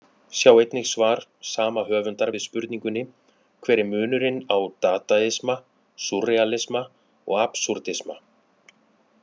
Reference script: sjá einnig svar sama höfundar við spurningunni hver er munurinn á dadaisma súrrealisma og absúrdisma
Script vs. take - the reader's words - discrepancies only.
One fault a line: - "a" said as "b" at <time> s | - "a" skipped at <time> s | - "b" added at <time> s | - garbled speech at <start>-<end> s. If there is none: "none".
none